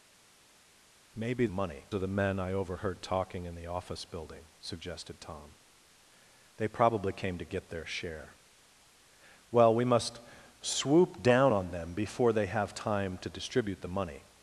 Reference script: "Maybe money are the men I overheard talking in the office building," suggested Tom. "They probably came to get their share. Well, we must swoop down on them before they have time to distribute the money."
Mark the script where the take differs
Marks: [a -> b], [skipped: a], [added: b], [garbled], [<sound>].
"Maybe money are the men I overheard talking in the office building," suggested Tom. "They probably came to get their share. Well, we must swoop down on them before they have time to distribute the money."